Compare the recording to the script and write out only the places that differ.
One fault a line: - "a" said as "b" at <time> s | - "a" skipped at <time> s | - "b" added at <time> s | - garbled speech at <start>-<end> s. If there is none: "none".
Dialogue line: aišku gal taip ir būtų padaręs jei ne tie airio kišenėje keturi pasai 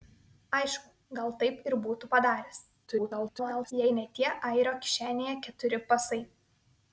- garbled speech at 2.9-3.7 s